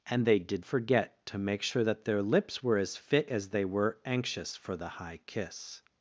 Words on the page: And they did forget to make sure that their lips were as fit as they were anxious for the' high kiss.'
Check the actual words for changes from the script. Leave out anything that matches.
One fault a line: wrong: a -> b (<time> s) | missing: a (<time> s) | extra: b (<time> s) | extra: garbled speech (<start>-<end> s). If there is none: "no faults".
no faults